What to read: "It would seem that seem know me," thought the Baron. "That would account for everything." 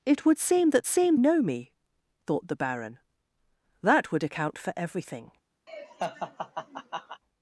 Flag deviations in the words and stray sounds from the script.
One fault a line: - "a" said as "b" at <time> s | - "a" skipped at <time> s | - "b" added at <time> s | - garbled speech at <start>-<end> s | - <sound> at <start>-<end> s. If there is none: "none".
- laugh at 5.7-7.2 s